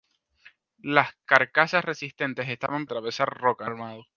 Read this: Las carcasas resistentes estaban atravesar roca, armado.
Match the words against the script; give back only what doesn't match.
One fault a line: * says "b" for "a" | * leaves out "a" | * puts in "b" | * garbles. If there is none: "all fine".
all fine